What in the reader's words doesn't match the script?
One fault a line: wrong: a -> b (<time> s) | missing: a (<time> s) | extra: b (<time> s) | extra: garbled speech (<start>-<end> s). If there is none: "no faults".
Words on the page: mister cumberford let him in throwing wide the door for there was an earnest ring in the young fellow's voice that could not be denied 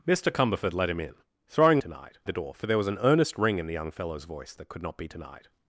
wrong: wide -> denied (1.8 s)